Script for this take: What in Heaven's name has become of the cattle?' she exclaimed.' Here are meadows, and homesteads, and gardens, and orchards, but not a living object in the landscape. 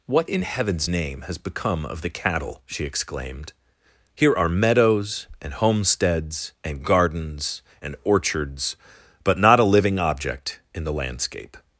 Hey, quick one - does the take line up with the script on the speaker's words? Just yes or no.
yes